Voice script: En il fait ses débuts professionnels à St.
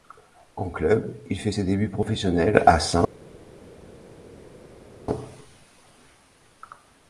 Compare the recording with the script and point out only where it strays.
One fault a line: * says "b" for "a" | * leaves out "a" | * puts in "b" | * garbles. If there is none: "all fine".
* puts in "club"